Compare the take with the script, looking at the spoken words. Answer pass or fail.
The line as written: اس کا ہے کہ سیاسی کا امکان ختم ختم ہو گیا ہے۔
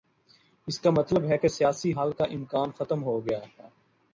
fail